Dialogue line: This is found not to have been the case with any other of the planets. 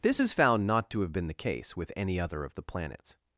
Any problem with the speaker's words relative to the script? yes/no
no